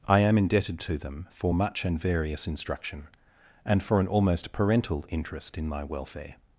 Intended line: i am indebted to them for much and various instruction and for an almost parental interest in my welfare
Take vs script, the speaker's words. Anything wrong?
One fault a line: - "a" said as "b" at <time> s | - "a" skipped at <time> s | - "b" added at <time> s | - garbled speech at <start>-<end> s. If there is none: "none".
none